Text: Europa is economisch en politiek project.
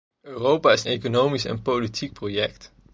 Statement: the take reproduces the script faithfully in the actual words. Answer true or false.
true